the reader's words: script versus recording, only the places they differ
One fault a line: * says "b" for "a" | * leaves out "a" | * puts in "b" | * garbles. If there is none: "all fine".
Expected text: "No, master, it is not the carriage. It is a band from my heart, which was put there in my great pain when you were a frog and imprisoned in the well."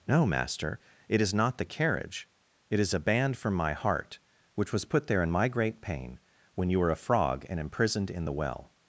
all fine